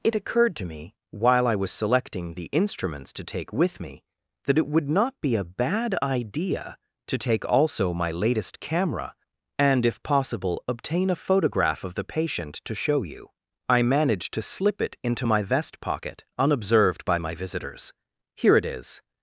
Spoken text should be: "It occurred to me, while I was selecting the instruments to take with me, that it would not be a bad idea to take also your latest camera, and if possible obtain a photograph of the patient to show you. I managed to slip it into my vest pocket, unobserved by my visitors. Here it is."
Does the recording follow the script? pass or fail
fail